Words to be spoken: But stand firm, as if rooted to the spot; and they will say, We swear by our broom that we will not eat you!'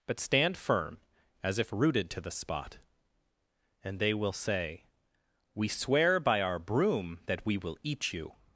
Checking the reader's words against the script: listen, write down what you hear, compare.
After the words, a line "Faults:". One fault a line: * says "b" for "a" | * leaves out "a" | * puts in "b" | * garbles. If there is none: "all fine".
But stand firm, as if rooted to the spot; and they will say, We swear by our broom that we will eat you!'
Faults:
* leaves out "not"